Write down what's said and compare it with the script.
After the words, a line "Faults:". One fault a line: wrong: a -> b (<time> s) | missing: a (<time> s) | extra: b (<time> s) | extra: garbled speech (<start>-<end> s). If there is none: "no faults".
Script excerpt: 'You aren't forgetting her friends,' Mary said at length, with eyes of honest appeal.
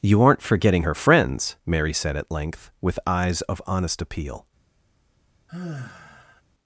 'You aren't forgetting her friends,' Mary said at length, with eyes of honest appeal.
Faults:
no faults